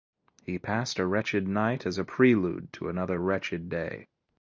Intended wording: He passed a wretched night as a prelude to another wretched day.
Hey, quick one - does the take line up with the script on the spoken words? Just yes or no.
yes